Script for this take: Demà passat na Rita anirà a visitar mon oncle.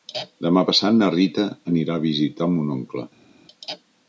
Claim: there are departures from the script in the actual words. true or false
false